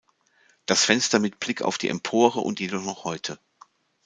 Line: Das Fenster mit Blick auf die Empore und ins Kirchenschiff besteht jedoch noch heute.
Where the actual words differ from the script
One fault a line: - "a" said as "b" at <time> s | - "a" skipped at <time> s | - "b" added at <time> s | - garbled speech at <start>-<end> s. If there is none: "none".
- "ins Kirchenschiff besteht" skipped at 2.6 s